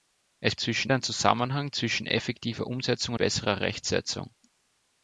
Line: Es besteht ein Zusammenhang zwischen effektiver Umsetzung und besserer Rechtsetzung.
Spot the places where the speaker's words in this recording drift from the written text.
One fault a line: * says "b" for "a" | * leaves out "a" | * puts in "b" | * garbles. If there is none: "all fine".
* says "zwischen" for "besteht"
* leaves out "und"